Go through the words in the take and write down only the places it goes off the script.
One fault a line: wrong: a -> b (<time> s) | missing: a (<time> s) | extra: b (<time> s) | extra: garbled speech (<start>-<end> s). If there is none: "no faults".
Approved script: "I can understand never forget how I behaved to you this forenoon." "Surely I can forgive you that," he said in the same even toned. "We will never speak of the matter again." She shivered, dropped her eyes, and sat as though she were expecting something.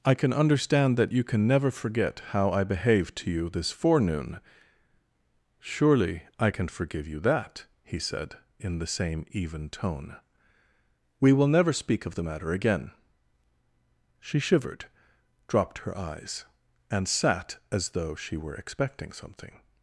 extra: that you can (1.0 s)
wrong: toned -> tone (9.7 s)